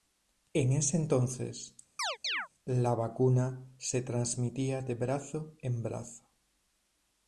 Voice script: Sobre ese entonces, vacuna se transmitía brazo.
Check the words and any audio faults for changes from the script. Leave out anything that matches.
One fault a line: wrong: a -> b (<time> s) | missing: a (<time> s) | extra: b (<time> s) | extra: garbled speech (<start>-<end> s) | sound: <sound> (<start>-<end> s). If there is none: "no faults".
wrong: Sobre -> En (0.5 s)
sound: chirp (2.0-2.5 s)
extra: la (2.6 s)
extra: de brazo en (4.8 s)